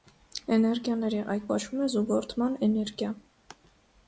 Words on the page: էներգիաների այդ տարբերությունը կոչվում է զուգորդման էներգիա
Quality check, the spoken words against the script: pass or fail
fail